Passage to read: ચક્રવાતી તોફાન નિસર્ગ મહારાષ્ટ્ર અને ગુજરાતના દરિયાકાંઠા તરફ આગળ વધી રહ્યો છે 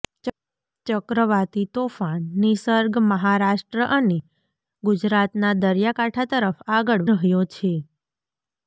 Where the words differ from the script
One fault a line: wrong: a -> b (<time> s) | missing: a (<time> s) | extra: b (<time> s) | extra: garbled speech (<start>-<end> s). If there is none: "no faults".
missing: વધી (7.1 s)